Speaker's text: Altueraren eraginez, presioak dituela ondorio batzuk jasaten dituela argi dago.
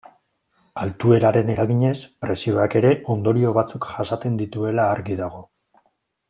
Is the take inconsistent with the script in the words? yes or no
yes